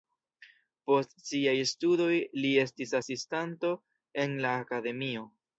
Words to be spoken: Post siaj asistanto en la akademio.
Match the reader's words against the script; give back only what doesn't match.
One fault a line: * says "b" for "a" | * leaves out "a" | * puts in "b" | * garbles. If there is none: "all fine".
* puts in "studoj li estis"